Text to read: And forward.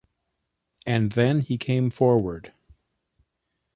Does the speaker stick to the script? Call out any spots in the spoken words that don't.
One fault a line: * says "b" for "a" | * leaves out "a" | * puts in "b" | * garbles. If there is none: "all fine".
* puts in "then he came"